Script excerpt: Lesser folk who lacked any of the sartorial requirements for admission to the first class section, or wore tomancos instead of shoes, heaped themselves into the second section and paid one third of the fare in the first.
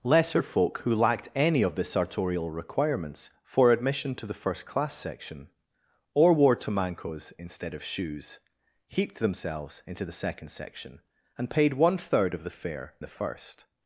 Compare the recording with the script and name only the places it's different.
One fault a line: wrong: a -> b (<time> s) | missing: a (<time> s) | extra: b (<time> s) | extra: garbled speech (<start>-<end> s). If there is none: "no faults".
missing: in (12.9 s)